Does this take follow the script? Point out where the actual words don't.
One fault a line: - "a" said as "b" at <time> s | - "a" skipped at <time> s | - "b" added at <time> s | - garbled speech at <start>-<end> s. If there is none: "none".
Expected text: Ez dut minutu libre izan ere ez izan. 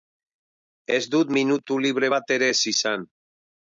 - "izan" said as "bat" at 2.1 s